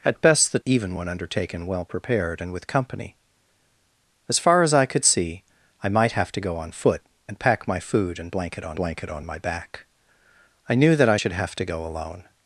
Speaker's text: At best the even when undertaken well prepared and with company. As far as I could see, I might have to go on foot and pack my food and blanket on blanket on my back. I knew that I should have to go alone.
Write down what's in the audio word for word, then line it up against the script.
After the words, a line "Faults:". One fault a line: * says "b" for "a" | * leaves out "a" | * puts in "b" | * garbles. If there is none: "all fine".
At best the even when undertaken well prepared and with company. As far as I could see, I might have to go on foot and pack my food and blanket on blanket on my back. I knew that I should have to go alone.
Faults:
all fine